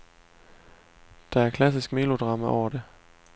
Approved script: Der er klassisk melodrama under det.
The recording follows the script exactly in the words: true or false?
false